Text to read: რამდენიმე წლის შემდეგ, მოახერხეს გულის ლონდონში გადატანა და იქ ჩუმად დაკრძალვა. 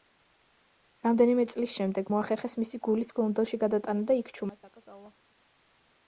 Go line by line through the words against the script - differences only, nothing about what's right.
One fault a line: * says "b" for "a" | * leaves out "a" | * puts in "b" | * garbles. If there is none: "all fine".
* puts in "მისი"